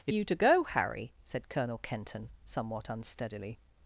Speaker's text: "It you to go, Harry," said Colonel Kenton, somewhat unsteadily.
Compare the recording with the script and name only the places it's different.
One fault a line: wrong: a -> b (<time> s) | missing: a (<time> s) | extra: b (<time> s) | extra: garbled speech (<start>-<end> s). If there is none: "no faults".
no faults